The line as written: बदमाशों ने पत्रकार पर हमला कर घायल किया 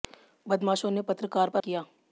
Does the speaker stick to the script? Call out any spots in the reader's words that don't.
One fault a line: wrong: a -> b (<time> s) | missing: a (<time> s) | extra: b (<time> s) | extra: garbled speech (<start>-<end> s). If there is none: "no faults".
missing: हमला कर घायल (1.6 s)